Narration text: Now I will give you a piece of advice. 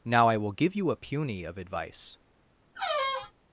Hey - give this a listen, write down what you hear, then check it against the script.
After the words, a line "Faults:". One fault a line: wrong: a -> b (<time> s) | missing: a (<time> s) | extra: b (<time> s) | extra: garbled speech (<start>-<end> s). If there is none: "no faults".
Now I will give you a puny of advice.
Faults:
wrong: piece -> puny (0.9 s)